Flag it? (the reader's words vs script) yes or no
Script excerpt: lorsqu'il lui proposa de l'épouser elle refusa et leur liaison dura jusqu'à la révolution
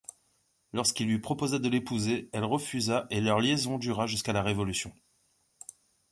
no